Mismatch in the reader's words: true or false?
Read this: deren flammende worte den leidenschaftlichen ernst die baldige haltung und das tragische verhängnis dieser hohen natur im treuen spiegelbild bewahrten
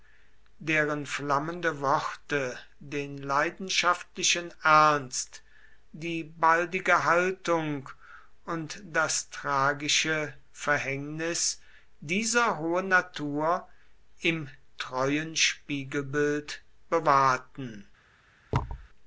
false